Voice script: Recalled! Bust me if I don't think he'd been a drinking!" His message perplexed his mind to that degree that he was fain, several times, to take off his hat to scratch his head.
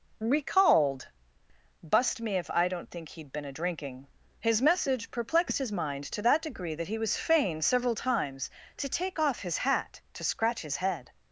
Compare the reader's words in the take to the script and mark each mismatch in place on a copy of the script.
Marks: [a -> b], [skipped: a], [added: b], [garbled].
Recalled! Bust me if I don't think he'd been a drinking!" His message perplexed his mind to that degree that he was fain, several times, to take off his hat to scratch his head.